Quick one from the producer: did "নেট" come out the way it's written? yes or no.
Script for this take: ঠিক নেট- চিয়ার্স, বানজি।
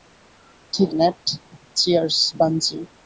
yes